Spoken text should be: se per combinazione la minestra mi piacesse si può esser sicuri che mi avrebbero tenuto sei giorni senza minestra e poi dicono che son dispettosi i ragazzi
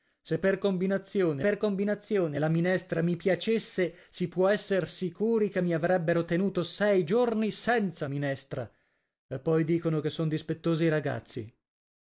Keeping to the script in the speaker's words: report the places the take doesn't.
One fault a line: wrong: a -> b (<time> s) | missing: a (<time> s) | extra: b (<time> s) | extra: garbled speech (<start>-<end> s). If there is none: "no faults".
extra: per combinazione (1.4 s)